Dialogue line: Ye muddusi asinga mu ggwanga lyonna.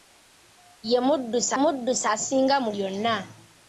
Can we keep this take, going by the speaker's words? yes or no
no